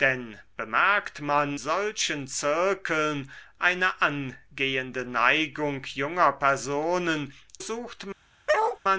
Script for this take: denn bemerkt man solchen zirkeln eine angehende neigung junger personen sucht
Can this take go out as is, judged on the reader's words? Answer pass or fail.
pass